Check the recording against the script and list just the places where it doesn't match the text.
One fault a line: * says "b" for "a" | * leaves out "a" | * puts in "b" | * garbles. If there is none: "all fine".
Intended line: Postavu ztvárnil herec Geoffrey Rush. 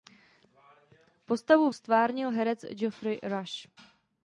all fine